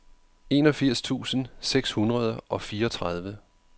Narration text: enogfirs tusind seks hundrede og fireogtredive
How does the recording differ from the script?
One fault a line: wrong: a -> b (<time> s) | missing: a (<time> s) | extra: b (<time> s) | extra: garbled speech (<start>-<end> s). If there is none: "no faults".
no faults